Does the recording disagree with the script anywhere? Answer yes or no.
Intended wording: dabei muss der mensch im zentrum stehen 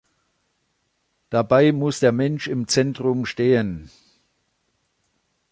no